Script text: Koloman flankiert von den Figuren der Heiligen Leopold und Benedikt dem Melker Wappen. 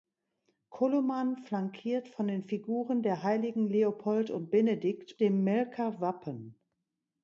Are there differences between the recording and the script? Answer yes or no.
no